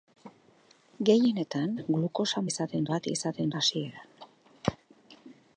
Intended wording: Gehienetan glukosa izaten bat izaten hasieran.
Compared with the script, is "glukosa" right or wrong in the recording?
right